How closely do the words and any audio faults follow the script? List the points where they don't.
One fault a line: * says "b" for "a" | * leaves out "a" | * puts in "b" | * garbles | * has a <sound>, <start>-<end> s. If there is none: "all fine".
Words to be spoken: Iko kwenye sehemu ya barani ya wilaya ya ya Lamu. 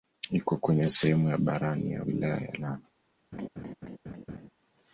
* leaves out "ya"
* has a laugh, 3.3-4.5 s